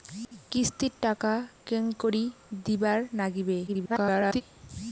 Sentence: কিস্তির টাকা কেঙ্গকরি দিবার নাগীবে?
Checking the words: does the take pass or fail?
fail